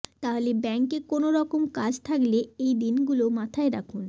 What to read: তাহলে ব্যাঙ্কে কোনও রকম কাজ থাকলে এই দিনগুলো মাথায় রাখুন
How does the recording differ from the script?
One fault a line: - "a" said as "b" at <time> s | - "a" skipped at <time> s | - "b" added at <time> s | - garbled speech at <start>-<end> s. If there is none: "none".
none